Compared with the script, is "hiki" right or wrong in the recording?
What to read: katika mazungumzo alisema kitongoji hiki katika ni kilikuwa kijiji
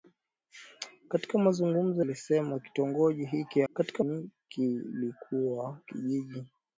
right